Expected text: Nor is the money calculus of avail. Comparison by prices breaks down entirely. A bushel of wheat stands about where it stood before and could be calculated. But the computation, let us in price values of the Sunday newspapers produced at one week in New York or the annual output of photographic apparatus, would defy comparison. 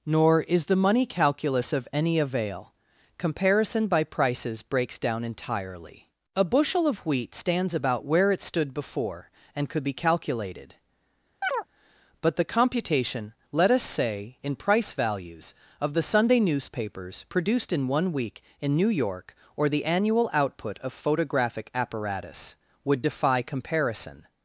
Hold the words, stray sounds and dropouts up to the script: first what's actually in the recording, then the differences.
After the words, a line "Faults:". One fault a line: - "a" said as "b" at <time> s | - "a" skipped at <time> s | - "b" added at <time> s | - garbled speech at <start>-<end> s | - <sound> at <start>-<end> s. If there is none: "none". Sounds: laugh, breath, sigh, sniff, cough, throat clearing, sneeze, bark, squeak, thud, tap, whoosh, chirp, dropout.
Nor is the money calculus of any avail. Comparison by prices breaks down entirely. A bushel of wheat stands about where it stood before and could be calculated. But the computation, let us say, in price values of the Sunday newspapers produced in one week in New York or the annual output of photographic apparatus, would defy comparison.
Faults:
- "any" added at 1.9 s
- chirp at 11.4-11.7 s
- "say" added at 13.8 s
- "at" said as "in" at 17.7 s